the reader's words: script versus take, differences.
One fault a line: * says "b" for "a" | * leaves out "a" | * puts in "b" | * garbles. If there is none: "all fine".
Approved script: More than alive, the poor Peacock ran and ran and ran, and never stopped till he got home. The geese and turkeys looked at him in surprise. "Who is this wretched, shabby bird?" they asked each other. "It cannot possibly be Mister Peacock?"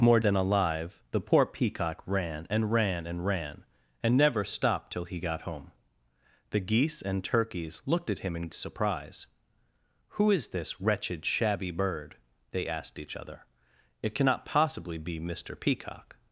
all fine